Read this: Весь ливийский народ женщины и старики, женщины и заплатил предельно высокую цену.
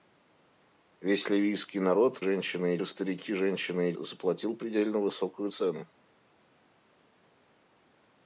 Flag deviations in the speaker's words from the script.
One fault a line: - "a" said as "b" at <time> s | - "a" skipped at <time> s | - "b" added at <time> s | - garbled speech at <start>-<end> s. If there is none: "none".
none